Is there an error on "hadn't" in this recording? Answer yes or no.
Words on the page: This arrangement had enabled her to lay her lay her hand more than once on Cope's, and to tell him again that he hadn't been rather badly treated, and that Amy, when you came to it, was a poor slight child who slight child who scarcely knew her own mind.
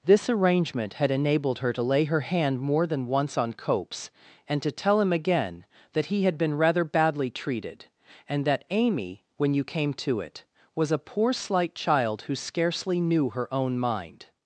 yes